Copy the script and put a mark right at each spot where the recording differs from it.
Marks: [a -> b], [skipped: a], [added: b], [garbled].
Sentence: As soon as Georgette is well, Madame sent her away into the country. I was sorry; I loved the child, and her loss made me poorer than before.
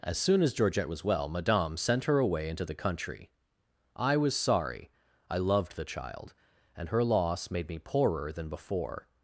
As soon as Georgette [is -> was] well, Madame sent her away into the country. I was sorry; I loved the child, and her loss made me poorer than before.